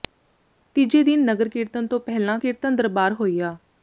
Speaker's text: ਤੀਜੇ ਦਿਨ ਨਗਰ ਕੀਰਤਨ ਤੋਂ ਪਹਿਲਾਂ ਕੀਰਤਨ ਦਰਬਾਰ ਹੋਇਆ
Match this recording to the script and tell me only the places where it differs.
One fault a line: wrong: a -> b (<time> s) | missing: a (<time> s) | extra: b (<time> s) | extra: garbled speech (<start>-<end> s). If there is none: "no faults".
no faults